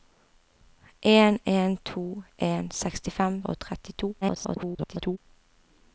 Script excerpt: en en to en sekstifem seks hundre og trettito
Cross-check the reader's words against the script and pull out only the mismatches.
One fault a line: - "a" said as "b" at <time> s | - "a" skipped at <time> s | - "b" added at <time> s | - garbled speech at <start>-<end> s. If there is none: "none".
- "seks hundre" skipped at 3.4 s
- garbled speech at 4.2-5.2 s